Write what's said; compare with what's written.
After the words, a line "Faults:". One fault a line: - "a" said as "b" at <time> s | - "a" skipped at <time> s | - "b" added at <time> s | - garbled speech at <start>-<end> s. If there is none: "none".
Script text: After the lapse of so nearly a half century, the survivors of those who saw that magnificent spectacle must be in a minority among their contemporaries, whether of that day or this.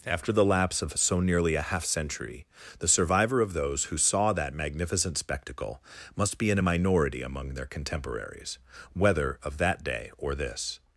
After the lapse of so nearly a half century, the survivor of those who saw that magnificent spectacle must be in a minority among their contemporaries, whether of that day or this.
Faults:
- "survivors" said as "survivor" at 2.9 s